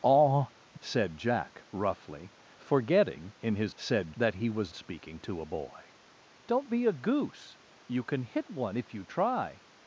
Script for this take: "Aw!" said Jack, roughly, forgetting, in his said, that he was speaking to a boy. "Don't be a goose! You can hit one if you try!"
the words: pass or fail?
pass